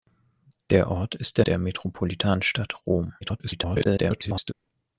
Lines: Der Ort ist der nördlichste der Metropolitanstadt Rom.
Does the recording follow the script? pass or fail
fail